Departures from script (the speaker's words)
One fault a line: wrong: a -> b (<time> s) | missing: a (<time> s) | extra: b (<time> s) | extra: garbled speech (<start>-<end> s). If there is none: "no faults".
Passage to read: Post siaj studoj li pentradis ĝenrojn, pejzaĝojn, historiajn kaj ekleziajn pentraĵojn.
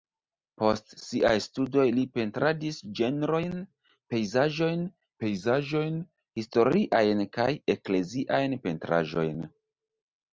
extra: pejzaĝojn (5.3 s)